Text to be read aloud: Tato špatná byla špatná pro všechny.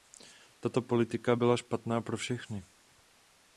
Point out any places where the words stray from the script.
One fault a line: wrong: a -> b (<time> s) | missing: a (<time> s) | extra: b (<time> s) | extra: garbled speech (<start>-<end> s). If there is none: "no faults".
wrong: špatná -> politika (0.8 s)